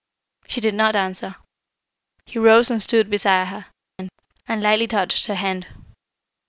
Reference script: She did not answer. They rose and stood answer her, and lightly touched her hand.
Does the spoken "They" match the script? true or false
false